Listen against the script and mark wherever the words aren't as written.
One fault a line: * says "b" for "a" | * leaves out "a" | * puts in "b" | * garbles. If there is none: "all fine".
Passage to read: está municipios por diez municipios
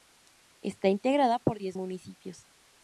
* says "integrada" for "municipios"